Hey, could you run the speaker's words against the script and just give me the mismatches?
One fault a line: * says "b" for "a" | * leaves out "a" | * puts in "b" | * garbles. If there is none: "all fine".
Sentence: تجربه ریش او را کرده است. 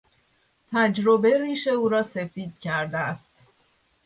* puts in "سفید"